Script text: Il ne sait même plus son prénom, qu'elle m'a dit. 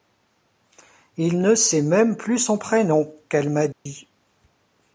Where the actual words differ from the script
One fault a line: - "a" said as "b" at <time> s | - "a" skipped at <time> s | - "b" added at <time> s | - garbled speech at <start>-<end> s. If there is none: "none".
none